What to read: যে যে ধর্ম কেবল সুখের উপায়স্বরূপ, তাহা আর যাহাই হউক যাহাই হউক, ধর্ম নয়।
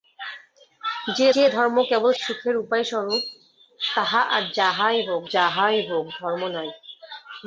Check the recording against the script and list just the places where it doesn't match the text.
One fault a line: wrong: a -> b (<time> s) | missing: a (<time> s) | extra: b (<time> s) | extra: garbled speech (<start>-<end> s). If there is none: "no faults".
no faults